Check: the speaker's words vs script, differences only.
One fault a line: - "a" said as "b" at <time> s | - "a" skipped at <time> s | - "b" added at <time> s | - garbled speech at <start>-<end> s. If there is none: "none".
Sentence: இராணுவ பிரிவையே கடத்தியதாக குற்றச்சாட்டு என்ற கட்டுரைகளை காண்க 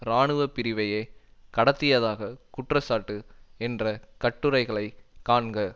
none